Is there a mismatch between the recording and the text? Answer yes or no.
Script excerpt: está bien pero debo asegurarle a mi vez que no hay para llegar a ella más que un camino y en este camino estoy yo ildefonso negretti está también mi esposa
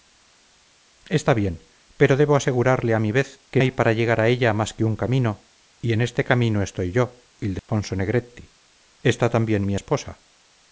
yes